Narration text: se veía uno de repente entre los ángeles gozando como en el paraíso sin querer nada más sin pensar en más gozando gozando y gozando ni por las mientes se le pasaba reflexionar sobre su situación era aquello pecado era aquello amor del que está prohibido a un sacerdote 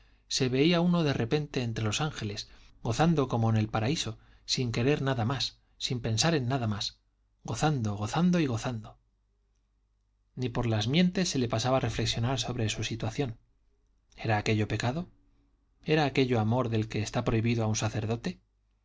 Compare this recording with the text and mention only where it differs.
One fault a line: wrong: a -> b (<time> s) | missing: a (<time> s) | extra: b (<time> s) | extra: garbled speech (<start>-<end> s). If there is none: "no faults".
extra: nada (6.5 s)